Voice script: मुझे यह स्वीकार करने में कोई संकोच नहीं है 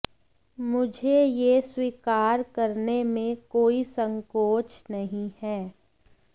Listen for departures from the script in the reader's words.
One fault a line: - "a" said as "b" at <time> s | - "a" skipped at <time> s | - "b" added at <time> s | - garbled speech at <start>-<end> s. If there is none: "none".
none